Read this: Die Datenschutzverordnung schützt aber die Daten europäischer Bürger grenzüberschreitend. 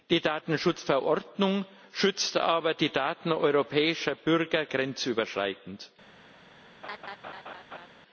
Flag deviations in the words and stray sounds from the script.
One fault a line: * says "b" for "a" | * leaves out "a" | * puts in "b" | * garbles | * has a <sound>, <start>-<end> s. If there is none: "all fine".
* has a laugh, 6.8-7.9 s